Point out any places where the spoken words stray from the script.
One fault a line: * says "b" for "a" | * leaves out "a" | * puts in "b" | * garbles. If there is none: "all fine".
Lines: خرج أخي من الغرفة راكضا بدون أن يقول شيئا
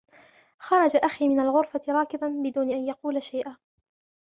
all fine